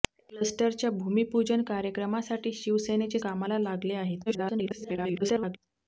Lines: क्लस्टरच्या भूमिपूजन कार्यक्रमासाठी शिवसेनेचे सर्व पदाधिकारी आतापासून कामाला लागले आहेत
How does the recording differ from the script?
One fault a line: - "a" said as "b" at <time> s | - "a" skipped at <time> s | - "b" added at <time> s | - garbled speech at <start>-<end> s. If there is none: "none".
- "सर्व पदाधिकारी आतापासून" skipped at 3.2 s
- garbled speech at 4.3-5.6 s